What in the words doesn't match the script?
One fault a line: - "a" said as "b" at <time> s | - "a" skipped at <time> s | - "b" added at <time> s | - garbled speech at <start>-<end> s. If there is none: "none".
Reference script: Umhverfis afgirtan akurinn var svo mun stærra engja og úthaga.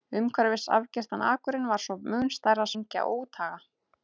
none